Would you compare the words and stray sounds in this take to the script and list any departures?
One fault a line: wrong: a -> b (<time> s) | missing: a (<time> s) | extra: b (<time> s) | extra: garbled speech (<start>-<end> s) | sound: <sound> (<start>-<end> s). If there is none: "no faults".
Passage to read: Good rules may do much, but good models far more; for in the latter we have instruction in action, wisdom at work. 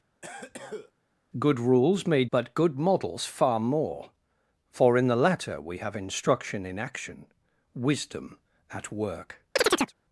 sound: cough (0.2-0.9 s)
missing: do much (2.3 s)
sound: chirp (9.6-9.9 s)